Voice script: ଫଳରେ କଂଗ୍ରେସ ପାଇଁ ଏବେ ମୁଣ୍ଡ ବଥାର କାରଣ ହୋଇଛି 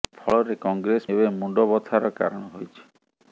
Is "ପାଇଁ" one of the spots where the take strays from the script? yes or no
yes